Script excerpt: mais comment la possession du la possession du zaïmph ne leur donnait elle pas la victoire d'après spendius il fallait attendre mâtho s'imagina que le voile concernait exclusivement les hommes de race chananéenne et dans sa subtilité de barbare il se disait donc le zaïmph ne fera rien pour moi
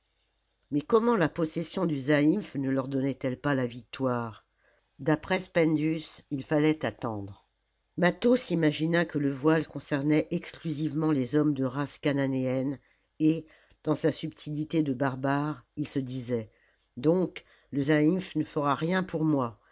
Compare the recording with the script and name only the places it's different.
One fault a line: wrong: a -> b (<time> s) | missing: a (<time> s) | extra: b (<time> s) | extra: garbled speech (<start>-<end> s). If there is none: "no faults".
missing: la possession du (2.0 s)